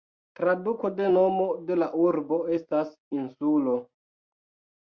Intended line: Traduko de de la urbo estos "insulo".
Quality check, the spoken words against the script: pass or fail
fail